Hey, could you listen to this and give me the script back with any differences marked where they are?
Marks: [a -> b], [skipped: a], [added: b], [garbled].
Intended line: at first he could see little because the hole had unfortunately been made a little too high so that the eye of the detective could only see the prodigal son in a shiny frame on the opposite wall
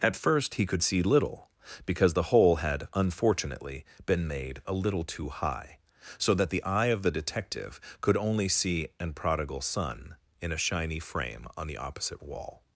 at first he could see little because the hole had unfortunately been made a little too high so that the eye of the detective could only see [the -> an] prodigal son in a shiny frame on the opposite wall